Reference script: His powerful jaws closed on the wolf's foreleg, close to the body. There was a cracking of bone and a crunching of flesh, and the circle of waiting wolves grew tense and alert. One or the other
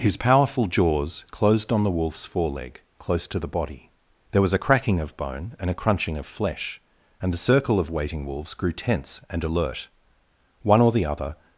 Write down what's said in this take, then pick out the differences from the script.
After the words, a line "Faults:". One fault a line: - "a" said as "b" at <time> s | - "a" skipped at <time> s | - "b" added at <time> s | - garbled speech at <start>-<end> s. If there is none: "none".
His powerful jaws closed on the wolf's foreleg, close to the body. There was a cracking of bone and a crunching of flesh, and the circle of waiting wolves grew tense and alert. One or the other
Faults:
none